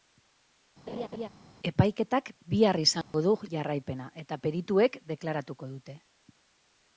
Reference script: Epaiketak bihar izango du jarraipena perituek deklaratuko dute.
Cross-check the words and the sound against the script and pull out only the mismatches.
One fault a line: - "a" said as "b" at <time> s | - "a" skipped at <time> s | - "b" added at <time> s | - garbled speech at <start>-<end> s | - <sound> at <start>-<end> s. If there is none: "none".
- laugh at 0.9-1.3 s
- dropout at 3.0-3.1 s
- "eta" added at 4.2 s